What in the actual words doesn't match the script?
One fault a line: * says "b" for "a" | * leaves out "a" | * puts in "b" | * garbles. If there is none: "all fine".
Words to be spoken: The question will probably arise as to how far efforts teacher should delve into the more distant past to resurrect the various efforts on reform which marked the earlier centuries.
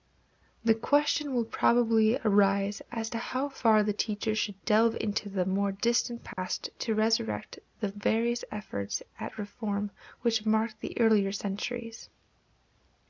* says "the" for "efforts"
* says "at" for "on"